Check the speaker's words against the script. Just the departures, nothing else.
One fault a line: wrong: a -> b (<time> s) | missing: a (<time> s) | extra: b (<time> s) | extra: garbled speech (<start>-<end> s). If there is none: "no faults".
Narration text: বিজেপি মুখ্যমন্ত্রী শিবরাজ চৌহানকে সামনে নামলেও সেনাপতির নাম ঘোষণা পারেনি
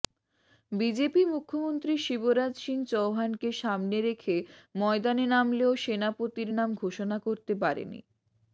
extra: সিং (2.6 s)
extra: রেখে ময়দানে (4.1 s)
extra: করতে (7.3 s)